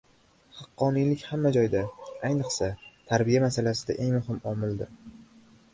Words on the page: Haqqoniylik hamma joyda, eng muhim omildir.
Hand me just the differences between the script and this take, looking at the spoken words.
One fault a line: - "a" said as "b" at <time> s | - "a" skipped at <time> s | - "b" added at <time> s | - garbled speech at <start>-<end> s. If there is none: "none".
- "ayniqsa tarbiya masalasida" added at 2.3 s